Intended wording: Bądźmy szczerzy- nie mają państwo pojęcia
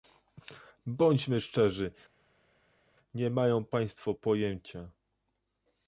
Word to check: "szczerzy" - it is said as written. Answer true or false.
true